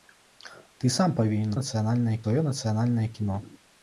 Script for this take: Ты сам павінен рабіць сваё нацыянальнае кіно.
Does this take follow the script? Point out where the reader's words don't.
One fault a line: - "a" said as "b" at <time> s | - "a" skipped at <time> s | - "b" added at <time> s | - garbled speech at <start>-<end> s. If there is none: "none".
- "рабіць" said as "нацыянальнае" at 1.6 s